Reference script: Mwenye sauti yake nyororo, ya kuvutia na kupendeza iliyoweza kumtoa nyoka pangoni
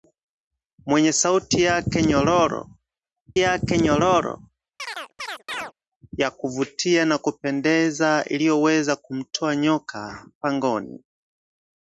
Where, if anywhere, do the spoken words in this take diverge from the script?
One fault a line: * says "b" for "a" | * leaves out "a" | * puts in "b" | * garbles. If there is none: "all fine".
* puts in "yake nyororo"